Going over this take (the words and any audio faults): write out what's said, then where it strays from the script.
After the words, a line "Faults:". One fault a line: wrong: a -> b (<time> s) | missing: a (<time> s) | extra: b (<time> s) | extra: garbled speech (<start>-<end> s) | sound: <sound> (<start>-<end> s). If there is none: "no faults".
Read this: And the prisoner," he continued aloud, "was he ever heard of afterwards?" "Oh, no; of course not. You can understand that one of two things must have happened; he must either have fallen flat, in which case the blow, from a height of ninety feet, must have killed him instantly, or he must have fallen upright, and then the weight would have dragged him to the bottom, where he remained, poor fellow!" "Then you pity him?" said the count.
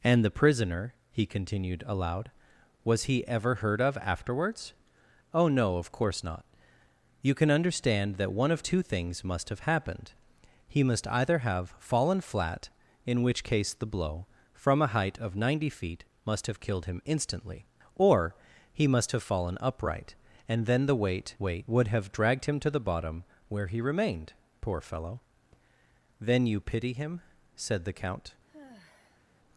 And the prisoner," he continued aloud, "was he ever heard of afterwards?" "Oh, no; of course not. You can understand that one of two things must have happened; he must either have fallen flat, in which case the blow, from a height of ninety feet, must have killed him instantly, or he must have fallen upright, and then the weight weight would have dragged him to the bottom, where he remained, poor fellow!" "Then you pity him?" said the count.
Faults:
extra: weight (21.4 s)
sound: sigh (28.5-29.3 s)